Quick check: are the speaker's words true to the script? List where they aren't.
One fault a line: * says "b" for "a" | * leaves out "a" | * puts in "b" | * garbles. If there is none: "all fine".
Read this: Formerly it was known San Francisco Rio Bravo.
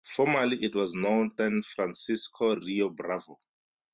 all fine